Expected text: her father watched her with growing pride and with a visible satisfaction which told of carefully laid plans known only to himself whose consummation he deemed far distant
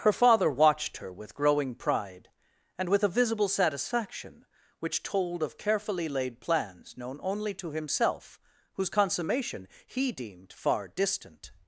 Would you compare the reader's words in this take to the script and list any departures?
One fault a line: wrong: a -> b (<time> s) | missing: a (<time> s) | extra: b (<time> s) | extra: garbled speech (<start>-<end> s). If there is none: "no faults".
no faults